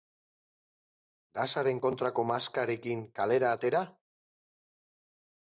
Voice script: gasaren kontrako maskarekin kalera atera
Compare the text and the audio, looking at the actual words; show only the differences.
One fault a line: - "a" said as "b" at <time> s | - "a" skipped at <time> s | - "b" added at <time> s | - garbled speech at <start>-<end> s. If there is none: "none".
none